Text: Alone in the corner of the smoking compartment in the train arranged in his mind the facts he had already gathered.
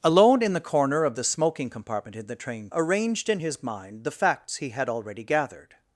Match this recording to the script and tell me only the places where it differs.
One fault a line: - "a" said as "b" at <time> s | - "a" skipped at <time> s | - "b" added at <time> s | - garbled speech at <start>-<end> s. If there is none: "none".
none